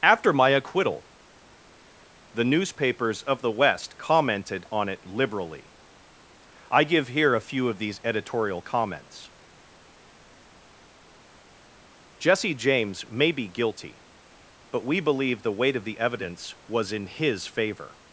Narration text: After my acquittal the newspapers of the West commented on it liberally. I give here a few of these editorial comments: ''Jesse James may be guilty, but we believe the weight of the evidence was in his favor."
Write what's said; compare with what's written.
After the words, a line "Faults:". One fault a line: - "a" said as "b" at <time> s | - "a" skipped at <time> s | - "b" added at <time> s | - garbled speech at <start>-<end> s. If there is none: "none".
After my acquittal the newspapers of the West commented on it liberally. I give here a few of these editorial comments: ''Jesse James may be guilty, but we believe the weight of the evidence was in his favor."
Faults:
none